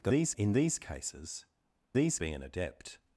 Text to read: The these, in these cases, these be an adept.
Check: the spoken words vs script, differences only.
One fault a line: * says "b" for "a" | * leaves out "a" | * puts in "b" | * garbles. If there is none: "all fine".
all fine